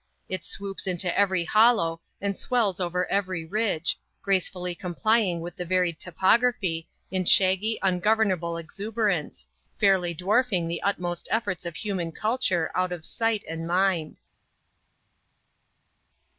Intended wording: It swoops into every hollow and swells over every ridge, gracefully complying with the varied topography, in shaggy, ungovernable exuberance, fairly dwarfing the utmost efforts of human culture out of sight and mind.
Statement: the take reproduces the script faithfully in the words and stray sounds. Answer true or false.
true